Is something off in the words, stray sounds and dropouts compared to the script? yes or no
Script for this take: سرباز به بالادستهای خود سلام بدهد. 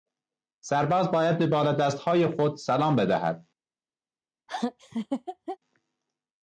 yes